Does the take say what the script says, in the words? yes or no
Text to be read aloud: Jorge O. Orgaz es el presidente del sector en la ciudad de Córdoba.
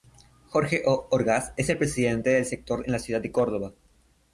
yes